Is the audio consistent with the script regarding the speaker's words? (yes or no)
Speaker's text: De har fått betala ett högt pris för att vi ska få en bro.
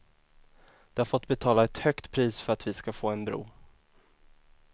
yes